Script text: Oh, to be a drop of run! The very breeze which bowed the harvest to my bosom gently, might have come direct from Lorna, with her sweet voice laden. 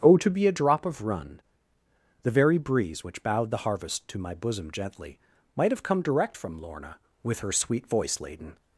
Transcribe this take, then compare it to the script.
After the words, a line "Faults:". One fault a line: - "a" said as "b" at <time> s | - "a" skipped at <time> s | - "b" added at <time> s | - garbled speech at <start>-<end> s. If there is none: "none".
Oh, to be a drop of run! The very breeze which bowed the harvest to my bosom gently, might have come direct from Lorna, with her sweet voice laden.
Faults:
none